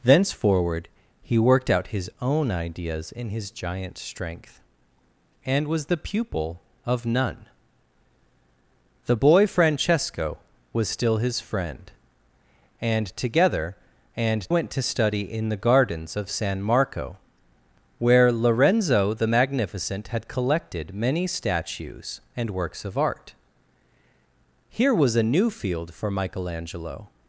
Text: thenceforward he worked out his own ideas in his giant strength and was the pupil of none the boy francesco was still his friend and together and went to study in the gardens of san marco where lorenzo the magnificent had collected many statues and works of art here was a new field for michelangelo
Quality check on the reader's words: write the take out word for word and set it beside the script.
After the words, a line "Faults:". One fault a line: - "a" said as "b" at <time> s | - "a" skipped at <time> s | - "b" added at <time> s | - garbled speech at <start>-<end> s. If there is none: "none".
thenceforward he worked out his own ideas in his giant strength and was the pupil of none the boy francesco was still his friend and together and went to study in the gardens of san marco where lorenzo the magnificent had collected many statues and works of art here was a new field for michelangelo
Faults:
none